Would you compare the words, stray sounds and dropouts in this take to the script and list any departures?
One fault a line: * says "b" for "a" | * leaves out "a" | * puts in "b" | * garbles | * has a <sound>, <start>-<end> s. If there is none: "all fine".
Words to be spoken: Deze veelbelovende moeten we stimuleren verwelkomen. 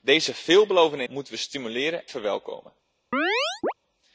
* has a chirp, 3.1-3.7 s